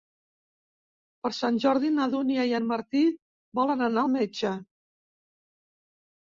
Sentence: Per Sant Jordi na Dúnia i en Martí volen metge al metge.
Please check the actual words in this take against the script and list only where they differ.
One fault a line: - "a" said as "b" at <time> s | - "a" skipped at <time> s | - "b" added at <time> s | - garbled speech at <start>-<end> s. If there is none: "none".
- "metge" said as "anar" at 3.9 s